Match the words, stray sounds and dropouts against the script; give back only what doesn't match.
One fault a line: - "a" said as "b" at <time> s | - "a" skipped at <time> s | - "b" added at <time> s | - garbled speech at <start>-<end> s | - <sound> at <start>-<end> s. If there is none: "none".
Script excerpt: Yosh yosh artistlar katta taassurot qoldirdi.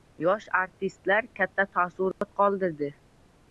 - "yosh" skipped at 0.5 s
- dropout at 2.1-2.2 s